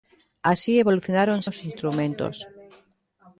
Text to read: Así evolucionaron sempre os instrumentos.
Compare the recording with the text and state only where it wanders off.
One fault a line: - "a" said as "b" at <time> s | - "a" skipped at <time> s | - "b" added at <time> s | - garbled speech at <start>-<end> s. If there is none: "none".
- "sempre" skipped at 1.4 s